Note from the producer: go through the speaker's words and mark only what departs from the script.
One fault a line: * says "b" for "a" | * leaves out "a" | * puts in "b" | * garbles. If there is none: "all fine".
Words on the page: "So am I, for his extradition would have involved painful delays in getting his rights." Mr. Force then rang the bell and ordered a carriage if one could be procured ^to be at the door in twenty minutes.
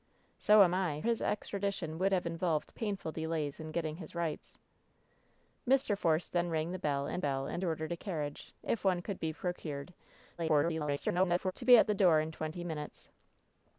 * leaves out "for"
* puts in "bell and"
* garbles